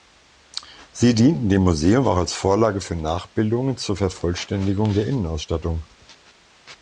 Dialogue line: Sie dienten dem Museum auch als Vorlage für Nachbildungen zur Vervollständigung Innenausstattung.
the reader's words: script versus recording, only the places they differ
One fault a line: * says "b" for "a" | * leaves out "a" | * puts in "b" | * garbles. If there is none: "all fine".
* puts in "der"